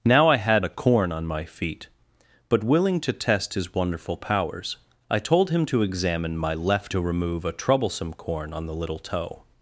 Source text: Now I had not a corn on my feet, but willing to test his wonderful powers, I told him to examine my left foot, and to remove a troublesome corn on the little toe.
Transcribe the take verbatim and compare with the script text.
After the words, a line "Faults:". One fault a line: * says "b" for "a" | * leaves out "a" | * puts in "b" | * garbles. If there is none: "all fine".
Now I had a corn on my feet, but willing to test his wonderful powers, I told him to examine my left to remove a troublesome corn on the little toe.
Faults:
* leaves out "not"
* leaves out "foot and"